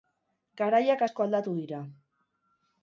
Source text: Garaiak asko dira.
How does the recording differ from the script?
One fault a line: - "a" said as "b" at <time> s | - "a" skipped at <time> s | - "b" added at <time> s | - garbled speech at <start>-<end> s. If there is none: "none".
- "aldatu" added at 1.3 s